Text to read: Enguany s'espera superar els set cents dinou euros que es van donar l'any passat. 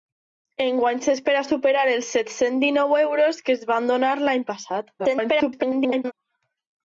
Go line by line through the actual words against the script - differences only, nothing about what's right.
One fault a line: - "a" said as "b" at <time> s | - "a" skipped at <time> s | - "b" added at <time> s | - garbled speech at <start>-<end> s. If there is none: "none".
- garbled speech at 5.0-6.1 s